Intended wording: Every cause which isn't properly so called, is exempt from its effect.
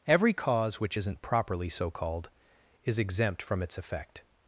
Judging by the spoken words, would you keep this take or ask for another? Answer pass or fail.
pass